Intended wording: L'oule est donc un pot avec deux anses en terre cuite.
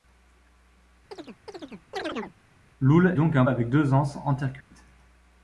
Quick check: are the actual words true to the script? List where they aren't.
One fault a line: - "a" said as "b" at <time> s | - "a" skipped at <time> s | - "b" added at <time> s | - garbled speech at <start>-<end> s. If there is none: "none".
- "est" skipped at 3.2 s
- "pot" skipped at 3.4 s